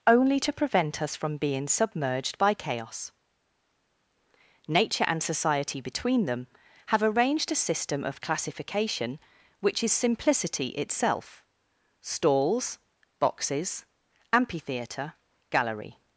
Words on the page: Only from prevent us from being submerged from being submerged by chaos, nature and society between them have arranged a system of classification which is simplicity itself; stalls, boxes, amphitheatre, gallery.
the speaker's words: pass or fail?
fail